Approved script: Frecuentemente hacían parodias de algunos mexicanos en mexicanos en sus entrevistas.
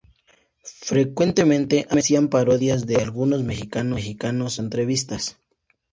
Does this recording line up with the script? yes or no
no